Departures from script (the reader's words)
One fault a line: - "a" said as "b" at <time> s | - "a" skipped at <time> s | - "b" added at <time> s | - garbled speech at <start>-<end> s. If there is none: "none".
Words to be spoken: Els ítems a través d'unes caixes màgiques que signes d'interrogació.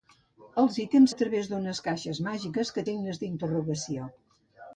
none